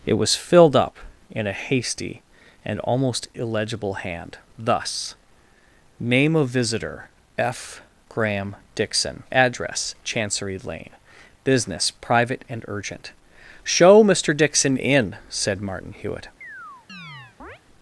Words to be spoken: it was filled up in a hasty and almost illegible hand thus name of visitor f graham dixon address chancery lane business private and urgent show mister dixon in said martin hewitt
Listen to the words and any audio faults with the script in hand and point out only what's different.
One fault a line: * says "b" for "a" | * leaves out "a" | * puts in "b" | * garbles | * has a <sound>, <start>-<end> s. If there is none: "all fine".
* has a chirp, 16.4-17.6 s